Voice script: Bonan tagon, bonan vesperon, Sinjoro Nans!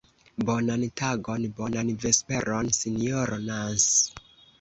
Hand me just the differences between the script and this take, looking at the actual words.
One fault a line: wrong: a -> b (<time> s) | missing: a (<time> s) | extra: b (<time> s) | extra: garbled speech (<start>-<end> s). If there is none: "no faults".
no faults